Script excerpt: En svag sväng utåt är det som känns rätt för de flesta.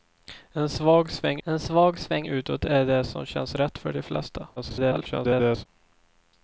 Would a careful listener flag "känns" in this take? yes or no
no